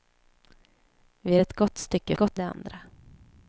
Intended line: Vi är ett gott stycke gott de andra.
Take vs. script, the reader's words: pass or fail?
pass